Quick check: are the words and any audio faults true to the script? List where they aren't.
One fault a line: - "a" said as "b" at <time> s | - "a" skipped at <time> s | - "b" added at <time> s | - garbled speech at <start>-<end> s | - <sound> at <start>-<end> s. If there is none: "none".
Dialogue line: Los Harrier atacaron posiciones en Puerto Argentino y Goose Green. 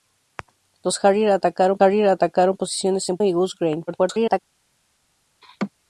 - "Harrier atacaron" added at 1.8 s
- "Puerto Argentino" skipped at 3.2 s
- garbled speech at 3.9-4.4 s
- laugh at 5.4-5.7 s